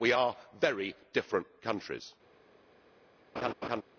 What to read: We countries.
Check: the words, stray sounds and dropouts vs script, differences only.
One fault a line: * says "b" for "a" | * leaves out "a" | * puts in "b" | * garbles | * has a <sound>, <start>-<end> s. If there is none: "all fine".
* puts in "are very different"
* has a laugh, 3.4-3.8 s